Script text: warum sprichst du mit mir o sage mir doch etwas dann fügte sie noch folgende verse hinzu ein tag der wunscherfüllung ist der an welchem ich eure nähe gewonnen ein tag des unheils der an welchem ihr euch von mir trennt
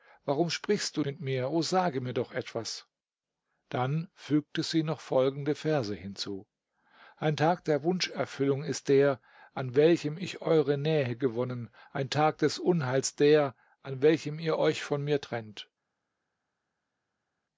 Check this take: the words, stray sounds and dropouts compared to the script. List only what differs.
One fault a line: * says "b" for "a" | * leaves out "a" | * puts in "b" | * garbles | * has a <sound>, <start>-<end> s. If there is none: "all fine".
all fine